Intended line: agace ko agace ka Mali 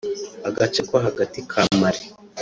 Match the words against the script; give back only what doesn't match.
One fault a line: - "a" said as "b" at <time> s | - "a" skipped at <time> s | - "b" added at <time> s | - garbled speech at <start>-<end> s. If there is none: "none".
- "agace" said as "hagati" at 1.1 s